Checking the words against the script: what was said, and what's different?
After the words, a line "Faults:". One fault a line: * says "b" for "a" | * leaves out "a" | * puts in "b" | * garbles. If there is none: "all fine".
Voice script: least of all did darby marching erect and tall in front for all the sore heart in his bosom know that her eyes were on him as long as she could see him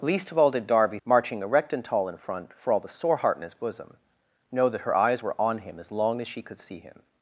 least of all did darby marching erect and tall in front for all the sore heart in his bosom know that her eyes were on him as long as she could see him
Faults:
all fine